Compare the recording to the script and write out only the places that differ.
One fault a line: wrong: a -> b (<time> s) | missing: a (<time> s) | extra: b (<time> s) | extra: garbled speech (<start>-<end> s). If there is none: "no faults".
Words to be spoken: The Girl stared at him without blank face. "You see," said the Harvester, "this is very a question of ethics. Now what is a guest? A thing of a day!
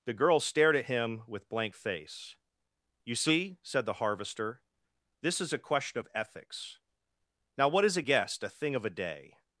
wrong: without -> with (1.3 s)
missing: very (5.5 s)